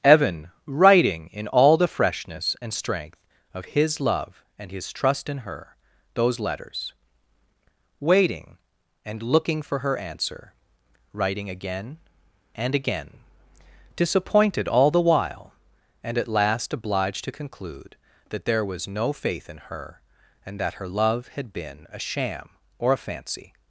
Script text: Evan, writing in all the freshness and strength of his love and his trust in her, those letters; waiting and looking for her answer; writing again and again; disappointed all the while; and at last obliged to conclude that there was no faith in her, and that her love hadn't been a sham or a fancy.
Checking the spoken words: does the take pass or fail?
fail